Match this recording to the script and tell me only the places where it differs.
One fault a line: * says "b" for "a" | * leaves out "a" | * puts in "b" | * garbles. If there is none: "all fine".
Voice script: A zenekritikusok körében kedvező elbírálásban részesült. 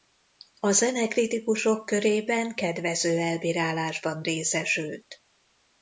all fine